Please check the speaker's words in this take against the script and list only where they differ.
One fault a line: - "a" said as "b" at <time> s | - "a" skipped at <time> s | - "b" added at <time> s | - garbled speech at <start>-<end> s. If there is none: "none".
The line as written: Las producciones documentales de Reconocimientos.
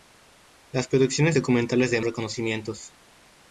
none